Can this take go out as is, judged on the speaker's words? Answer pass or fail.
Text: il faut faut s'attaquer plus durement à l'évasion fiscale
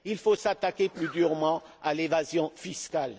fail